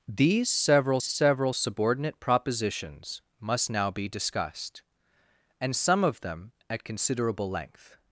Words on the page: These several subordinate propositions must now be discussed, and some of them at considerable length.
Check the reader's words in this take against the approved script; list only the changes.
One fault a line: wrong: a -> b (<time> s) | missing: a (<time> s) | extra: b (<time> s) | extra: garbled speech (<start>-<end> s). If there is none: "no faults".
extra: several (1.0 s)